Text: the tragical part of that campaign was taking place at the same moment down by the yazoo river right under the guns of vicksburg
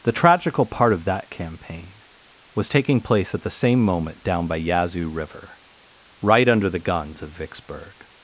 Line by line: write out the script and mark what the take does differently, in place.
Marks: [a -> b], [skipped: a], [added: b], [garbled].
the tragical part of that campaign was taking place at the same moment down by [skipped: the] yazoo river right under the guns of vicksburg